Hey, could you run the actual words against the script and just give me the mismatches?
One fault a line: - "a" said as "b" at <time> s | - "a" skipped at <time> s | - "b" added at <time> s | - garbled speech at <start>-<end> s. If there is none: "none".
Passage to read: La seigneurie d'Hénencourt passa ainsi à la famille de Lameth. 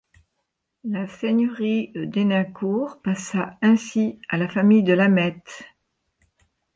none